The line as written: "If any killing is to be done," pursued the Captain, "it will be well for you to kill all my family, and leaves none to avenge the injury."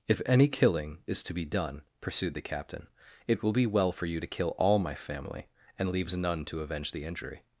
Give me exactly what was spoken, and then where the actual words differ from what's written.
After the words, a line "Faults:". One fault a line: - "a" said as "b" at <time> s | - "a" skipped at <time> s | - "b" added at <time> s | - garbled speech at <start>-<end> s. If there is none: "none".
"If any killing is to be done," pursued the Captain, "it will be well for you to kill all my family, and leaves none to avenge the injury."
Faults:
none